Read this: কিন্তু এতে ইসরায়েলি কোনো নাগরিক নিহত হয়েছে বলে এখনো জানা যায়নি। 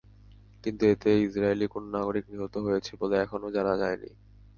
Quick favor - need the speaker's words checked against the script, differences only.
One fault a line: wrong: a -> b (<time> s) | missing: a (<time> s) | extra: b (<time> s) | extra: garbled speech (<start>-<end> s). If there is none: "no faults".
no faults